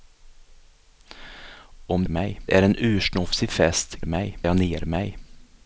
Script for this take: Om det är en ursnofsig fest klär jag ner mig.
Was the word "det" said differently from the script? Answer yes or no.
yes